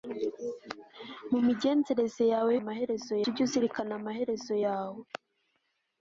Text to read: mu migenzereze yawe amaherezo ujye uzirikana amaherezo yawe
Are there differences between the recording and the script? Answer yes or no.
no